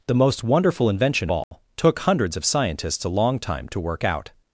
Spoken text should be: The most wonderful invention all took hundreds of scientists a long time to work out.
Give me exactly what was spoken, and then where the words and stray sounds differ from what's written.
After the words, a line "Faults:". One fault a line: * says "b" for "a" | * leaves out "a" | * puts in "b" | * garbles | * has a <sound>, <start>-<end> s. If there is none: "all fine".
The most wonderful invention all took hundreds of scientists a long time to work out.
Faults:
* has a dropout, 1.4-1.5 s